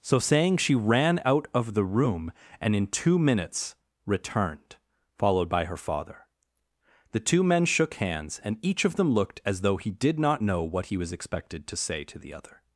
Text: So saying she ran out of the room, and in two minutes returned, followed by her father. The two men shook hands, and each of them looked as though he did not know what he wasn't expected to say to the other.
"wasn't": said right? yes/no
no